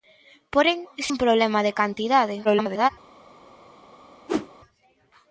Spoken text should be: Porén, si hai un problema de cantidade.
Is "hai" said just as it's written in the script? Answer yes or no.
no